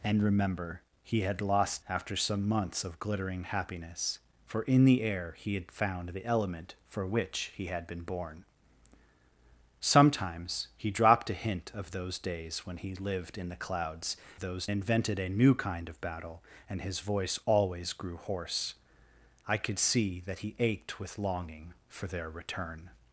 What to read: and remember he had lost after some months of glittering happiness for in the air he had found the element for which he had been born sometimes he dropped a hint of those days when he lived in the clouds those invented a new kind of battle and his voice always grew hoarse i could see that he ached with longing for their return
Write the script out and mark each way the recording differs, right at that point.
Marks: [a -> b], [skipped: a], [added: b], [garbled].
and remember he had lost after some months of glittering happiness for in the air he had found the element for which he had been born sometimes he dropped a hint of those days when he lived in the clouds those invented a new kind of battle and his voice always grew hoarse i could see that he ached with longing for their return